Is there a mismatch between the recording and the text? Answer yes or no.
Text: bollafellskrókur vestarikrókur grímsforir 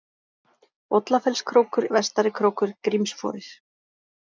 no